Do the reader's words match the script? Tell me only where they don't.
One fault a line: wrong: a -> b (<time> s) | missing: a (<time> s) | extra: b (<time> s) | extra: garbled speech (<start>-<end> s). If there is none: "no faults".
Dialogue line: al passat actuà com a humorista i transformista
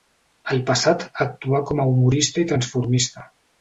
no faults